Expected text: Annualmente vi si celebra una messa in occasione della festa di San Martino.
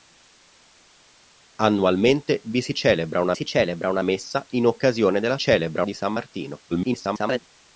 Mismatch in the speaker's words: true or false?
true